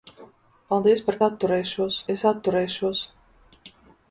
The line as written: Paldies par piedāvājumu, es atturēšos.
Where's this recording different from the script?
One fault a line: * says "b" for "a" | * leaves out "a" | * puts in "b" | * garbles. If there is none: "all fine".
* says "atturēšos" for "piedāvājumu"